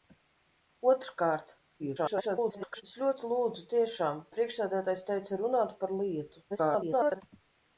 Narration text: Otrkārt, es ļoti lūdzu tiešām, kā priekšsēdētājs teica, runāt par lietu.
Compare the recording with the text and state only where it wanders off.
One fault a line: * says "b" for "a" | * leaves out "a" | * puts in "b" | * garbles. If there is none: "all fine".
* garbles
* leaves out "kā"
* garbles